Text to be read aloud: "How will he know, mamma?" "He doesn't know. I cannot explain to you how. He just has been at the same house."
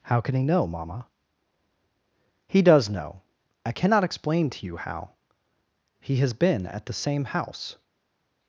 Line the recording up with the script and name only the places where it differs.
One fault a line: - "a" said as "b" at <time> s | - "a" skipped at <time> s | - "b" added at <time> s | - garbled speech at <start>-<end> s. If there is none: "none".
- "will" said as "can" at 0.2 s
- "doesn't" said as "does" at 2.6 s
- "just" skipped at 6.2 s